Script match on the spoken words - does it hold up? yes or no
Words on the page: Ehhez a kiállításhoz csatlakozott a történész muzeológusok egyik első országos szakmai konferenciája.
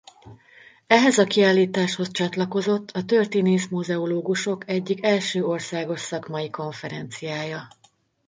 yes